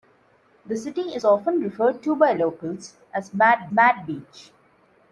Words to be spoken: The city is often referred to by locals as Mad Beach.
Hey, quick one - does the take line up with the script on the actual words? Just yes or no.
no